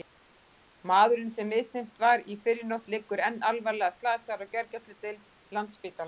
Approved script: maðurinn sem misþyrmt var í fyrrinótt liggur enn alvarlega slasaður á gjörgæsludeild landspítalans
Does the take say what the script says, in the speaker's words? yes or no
yes